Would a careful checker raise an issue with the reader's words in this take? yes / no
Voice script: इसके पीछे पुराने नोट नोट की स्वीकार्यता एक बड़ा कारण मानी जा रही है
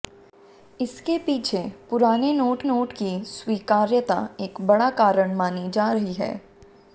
no